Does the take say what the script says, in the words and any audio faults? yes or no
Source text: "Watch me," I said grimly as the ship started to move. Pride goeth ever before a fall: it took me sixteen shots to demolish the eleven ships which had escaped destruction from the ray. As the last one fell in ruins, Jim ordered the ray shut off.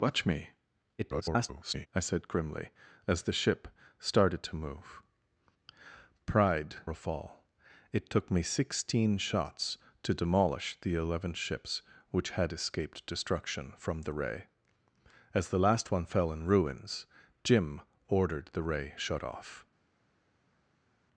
no